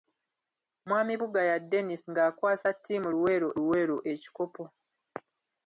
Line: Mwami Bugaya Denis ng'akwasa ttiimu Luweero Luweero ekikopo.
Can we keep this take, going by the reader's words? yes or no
yes